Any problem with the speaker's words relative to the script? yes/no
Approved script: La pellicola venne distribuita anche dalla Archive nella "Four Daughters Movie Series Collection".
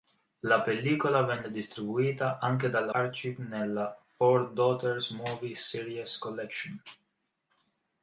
no